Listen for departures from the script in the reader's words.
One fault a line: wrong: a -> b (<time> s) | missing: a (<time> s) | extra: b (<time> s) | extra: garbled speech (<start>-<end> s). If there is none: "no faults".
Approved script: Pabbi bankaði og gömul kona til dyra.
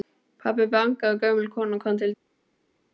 extra: kom (1.8 s)